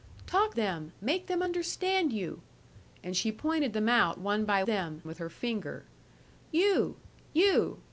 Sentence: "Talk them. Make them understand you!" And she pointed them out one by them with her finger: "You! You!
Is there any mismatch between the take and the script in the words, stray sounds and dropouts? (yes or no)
no